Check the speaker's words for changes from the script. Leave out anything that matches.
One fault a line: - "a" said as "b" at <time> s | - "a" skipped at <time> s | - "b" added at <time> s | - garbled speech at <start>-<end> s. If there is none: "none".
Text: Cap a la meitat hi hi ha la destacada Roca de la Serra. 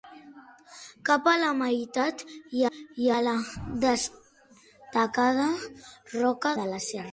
none